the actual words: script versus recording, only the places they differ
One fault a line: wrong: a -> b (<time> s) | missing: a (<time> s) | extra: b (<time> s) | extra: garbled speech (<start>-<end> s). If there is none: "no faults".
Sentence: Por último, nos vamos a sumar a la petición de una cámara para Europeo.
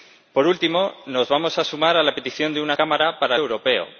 no faults